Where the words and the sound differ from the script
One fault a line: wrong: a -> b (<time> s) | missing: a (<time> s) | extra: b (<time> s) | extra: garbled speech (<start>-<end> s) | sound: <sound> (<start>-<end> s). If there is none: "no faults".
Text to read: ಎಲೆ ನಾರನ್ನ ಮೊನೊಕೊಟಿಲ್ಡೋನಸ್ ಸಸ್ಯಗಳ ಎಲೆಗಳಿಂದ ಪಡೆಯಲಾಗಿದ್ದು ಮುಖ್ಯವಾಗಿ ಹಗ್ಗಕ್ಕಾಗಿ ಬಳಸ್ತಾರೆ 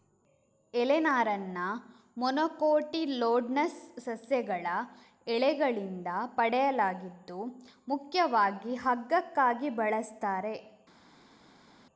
no faults